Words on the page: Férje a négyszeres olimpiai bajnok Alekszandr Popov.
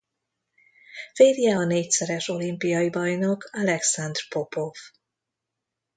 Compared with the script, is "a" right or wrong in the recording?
right